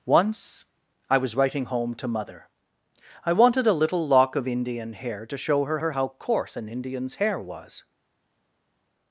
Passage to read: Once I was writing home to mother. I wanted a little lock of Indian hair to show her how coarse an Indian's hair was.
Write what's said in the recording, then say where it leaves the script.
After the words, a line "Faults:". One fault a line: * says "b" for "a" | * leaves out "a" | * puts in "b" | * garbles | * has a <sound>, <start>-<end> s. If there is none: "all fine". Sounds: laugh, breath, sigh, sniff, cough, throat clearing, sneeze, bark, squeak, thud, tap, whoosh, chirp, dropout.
Once I was writing home to mother. I wanted a little lock of Indian hair to show her her how coarse an Indian's hair was.
Faults:
* puts in "her"